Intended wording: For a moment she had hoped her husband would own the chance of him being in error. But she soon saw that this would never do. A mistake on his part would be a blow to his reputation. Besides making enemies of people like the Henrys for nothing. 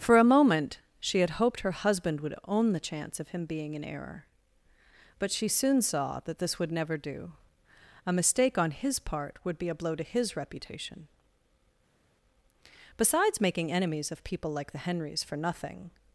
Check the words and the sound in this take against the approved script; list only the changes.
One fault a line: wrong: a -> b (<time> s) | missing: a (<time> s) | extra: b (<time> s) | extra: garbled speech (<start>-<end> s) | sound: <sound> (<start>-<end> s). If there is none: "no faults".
no faults